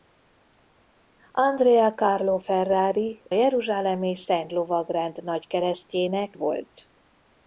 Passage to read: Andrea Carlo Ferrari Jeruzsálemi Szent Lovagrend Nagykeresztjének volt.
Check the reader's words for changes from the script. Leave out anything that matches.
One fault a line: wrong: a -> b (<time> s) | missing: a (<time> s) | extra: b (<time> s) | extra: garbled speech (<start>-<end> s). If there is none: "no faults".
no faults